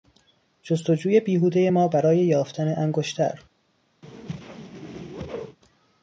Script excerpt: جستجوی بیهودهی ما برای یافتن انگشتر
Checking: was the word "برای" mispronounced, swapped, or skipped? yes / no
no